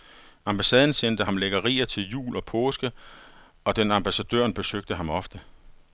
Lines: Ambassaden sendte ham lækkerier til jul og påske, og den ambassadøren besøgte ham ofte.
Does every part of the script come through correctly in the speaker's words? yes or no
yes